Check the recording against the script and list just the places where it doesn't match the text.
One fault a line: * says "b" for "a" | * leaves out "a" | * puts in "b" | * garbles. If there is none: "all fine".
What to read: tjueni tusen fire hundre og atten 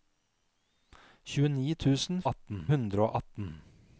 * says "atten" for "fire"